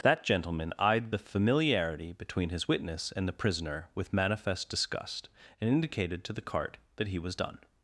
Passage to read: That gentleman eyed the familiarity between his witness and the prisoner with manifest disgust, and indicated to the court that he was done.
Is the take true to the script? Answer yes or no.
no